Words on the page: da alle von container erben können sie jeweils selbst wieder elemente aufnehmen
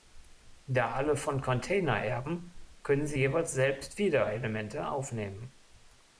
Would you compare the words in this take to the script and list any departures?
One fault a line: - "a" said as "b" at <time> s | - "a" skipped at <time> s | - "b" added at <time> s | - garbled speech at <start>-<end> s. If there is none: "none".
none